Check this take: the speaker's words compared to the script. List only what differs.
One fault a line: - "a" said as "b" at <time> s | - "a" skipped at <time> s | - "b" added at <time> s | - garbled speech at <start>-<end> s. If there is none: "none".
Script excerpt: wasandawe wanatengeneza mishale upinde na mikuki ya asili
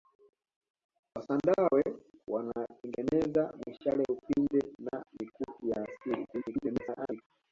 - garbled speech at 6.3-7.2 s